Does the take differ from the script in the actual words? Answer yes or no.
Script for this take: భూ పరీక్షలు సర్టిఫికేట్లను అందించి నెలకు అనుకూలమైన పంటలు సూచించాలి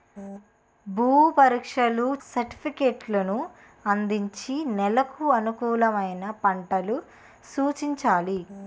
no